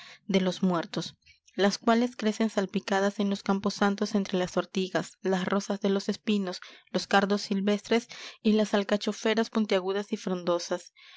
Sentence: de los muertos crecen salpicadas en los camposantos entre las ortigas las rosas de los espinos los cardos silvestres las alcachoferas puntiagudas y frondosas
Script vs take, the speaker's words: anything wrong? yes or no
yes